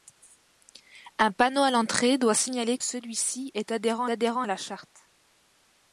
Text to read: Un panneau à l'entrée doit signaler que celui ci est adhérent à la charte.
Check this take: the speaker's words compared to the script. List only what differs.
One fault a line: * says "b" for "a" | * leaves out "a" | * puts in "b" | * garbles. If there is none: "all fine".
* leaves out "que"
* puts in "adhérent"